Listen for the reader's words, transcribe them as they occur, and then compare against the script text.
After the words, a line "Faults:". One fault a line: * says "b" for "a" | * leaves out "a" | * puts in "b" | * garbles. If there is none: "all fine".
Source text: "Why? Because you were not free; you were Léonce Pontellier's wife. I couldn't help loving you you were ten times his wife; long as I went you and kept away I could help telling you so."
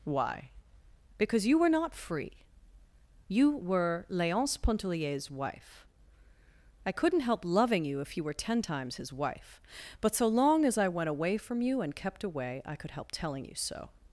"Why? Because you were not free; you were Léonce Pontellier's wife. I couldn't help loving you if you were ten times his wife; but so long as I went away from you and kept away I could help telling you so."
Faults:
* puts in "if"
* puts in "but so"
* puts in "away from"